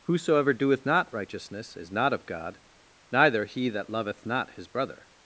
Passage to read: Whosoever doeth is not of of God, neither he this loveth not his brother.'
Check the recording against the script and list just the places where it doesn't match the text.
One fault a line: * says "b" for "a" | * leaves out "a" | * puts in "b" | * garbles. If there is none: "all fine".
* puts in "not righteousness"
* leaves out "of"
* says "that" for "this"